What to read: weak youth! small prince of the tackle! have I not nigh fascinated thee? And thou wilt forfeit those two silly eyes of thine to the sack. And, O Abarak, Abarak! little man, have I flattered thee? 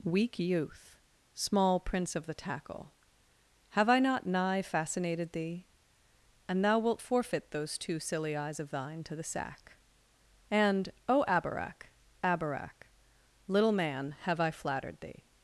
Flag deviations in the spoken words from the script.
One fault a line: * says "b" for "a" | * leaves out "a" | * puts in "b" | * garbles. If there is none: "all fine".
all fine